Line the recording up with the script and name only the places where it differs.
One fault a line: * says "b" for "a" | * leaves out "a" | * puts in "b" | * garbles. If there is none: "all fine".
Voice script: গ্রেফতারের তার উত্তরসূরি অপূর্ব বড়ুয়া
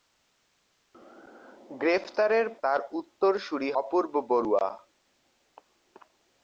all fine